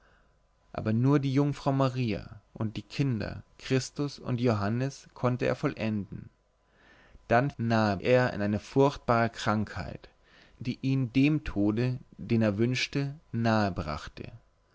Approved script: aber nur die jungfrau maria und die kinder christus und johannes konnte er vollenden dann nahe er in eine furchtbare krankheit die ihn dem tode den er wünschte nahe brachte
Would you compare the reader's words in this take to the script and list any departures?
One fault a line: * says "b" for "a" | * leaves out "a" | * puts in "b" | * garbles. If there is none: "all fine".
all fine